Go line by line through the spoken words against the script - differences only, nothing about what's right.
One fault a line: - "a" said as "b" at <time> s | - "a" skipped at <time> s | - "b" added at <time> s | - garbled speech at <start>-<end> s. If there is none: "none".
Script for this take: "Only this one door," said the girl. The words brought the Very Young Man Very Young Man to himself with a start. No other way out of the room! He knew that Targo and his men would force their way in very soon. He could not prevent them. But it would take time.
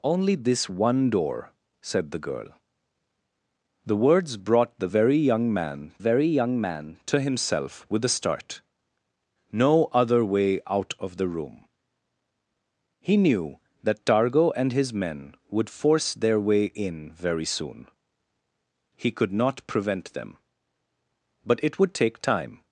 none